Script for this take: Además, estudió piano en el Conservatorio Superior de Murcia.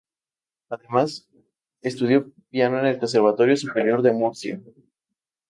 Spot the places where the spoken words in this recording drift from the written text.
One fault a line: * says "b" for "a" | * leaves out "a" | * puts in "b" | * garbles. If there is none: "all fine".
all fine